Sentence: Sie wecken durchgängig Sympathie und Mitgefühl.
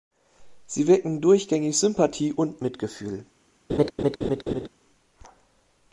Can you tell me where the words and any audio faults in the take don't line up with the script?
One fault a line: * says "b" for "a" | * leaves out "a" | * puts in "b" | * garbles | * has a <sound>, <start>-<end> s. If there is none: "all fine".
* has a laugh, 3.7-4.7 s